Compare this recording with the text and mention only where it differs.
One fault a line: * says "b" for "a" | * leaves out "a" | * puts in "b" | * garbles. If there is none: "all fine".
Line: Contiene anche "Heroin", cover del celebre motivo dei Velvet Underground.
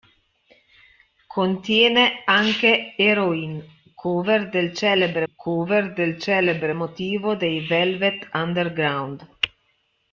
* puts in "cover del celebre"